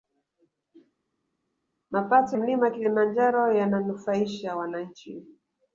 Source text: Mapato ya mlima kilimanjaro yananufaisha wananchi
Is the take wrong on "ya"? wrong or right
wrong